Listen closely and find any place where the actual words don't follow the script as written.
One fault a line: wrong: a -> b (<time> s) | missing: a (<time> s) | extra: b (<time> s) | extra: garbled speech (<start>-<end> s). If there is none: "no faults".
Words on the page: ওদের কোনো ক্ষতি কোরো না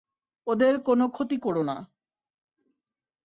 no faults